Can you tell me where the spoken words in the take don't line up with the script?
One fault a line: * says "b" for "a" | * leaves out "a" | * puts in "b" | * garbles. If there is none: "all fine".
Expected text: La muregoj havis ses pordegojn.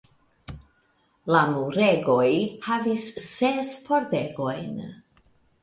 all fine